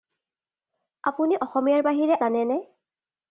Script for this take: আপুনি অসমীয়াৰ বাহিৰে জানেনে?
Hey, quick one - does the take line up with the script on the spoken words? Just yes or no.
yes